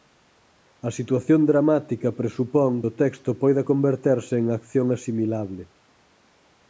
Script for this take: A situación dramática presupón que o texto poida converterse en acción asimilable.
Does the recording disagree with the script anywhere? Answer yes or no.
yes